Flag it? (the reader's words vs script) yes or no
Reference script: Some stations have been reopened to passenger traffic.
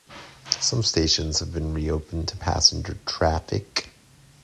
no